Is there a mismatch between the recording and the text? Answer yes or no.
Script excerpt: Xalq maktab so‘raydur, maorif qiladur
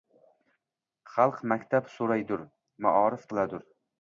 no